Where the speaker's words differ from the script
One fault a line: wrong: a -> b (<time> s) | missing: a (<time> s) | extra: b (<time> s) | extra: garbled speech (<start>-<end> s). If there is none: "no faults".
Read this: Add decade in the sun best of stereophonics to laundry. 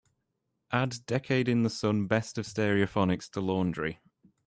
no faults